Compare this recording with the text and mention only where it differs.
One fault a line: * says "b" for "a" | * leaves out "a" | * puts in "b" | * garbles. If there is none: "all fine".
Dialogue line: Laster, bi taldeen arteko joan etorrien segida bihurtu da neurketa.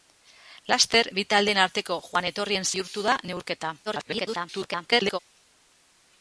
* leaves out "segida"
* garbles